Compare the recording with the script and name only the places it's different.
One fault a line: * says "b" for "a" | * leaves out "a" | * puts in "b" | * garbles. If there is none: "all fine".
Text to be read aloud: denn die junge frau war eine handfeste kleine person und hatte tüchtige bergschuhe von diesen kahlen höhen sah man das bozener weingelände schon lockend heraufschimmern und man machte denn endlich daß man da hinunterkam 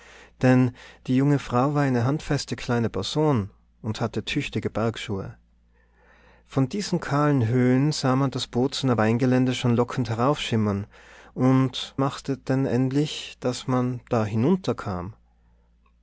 * leaves out "man"